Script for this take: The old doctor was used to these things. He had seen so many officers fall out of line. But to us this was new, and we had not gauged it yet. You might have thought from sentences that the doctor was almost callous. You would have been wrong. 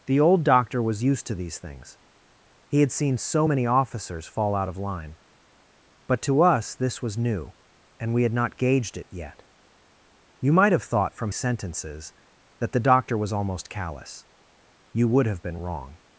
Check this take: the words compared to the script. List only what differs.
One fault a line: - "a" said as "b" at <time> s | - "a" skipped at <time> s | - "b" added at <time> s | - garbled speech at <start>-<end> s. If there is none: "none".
none